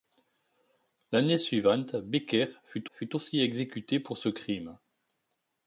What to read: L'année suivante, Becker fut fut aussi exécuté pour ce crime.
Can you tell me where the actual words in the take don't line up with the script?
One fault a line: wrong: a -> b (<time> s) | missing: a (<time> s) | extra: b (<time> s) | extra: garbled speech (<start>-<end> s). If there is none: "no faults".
no faults